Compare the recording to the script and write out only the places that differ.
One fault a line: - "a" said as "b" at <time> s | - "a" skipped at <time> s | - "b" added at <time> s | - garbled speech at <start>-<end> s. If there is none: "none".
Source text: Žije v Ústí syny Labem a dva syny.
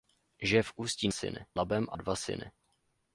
none